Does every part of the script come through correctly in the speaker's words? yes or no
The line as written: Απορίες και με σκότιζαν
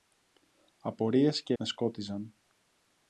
yes